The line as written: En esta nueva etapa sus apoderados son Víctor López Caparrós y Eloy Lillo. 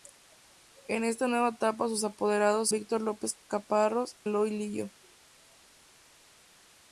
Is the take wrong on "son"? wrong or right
wrong